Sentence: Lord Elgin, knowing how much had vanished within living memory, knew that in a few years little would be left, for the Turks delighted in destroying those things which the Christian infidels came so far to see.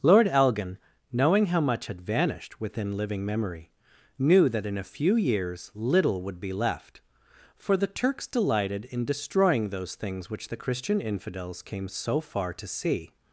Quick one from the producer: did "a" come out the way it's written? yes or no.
yes